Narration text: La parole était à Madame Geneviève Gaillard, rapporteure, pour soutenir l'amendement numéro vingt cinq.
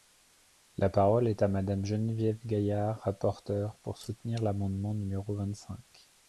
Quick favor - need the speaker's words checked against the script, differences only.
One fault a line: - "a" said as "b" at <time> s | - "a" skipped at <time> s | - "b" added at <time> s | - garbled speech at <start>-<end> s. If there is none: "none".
- "était" said as "est" at 1.3 s